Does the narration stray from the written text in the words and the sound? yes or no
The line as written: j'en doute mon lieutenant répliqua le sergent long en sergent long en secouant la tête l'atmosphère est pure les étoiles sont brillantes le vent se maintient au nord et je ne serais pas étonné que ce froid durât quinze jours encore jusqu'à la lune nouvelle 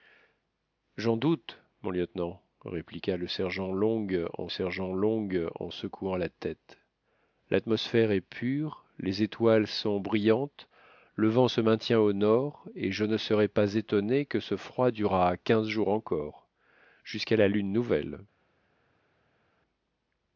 no